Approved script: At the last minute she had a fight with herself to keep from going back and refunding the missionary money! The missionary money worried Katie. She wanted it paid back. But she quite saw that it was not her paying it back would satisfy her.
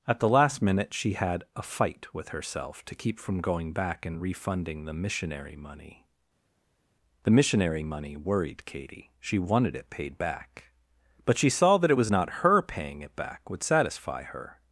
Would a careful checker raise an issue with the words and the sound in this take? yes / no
yes